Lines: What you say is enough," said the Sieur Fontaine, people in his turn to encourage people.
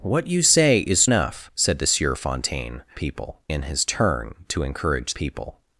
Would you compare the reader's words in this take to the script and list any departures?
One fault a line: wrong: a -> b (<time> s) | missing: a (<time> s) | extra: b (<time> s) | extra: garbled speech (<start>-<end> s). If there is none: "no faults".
no faults